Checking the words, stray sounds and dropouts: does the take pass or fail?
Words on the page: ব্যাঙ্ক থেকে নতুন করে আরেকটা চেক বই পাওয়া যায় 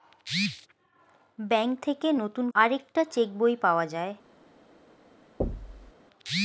fail